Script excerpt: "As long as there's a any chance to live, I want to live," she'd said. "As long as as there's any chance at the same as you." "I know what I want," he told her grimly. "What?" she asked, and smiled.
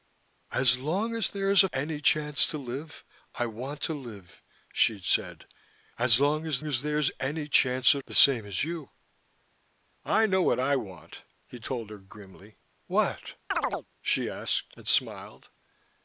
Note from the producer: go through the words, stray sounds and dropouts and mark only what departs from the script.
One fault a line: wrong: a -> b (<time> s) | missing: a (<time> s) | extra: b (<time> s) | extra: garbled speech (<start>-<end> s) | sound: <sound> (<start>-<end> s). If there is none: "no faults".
sound: chirp (13.5-13.9 s)